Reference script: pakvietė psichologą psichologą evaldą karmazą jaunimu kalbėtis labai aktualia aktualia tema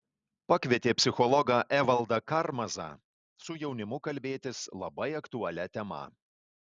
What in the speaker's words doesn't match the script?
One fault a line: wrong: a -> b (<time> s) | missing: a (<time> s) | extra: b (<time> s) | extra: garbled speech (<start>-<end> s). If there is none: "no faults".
missing: psichologą (1.6 s)
extra: su (3.5 s)
missing: aktualia (5.7 s)